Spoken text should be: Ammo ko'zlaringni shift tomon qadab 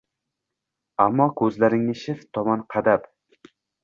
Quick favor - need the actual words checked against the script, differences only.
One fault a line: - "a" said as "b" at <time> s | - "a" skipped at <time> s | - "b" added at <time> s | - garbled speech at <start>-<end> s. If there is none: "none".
none